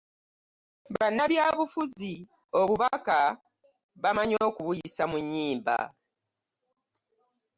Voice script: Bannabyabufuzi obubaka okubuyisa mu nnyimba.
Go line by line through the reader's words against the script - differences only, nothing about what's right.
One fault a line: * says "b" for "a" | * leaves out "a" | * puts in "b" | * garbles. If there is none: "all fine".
* puts in "bamanyi"